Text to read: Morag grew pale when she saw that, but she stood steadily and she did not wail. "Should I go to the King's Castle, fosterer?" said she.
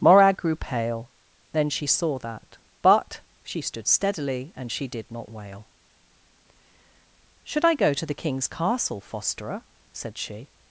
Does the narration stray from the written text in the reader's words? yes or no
yes